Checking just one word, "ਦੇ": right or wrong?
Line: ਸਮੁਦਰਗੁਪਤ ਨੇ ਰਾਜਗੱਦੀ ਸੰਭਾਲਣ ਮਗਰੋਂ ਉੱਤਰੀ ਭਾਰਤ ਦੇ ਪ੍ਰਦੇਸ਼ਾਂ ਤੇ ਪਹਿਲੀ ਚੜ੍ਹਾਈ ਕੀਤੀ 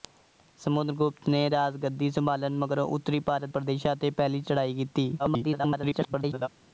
wrong